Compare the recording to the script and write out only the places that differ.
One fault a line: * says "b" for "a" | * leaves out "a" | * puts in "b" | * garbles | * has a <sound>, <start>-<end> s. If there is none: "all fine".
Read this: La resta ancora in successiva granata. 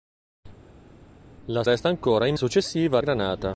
all fine